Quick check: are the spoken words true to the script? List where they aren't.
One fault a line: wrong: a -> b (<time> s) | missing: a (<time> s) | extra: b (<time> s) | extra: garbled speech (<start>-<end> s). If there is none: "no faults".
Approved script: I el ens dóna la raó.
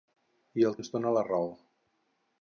no faults